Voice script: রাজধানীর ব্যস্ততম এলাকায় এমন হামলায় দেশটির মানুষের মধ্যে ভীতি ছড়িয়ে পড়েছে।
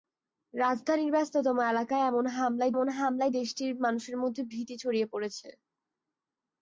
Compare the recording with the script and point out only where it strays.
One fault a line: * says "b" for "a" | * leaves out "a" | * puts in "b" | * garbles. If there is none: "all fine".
* puts in "এমন হামলায়"